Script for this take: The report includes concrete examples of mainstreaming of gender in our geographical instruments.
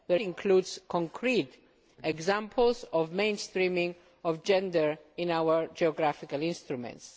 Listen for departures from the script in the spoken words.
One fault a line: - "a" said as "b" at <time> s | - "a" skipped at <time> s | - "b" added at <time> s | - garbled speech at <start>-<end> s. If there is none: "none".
- "report" skipped at 0.1 s